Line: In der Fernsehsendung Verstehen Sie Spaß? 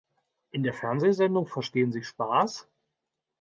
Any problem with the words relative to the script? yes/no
no